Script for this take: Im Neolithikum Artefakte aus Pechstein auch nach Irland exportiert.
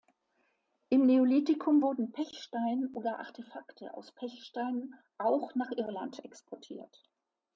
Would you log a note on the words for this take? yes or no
yes